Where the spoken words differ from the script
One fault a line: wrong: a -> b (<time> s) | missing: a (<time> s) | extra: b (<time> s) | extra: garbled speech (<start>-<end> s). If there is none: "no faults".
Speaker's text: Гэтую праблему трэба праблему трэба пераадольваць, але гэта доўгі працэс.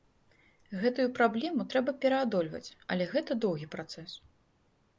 missing: праблему трэба (2.0 s)